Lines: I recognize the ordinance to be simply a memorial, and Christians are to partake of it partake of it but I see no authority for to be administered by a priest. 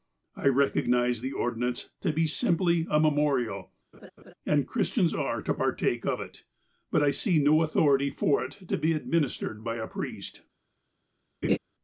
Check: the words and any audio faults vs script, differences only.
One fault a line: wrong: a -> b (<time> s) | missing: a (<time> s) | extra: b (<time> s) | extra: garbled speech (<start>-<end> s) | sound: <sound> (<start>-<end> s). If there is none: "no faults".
sound: laugh (3.9-4.3 s)
missing: partake of it (6.4 s)
extra: it (8.4 s)
sound: laugh (11.4-11.6 s)